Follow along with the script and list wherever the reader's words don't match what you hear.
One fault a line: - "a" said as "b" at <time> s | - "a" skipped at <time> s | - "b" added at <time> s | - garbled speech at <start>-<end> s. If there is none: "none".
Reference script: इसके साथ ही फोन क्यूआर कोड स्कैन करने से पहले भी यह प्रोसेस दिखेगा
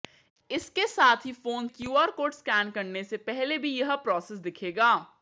none